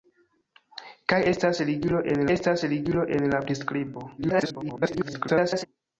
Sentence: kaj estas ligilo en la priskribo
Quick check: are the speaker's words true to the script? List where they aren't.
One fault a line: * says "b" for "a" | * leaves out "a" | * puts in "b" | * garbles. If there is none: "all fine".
* puts in "estas ligilo en"
* garbles